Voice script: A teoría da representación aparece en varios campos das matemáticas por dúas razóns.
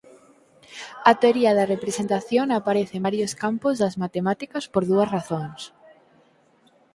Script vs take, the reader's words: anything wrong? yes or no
no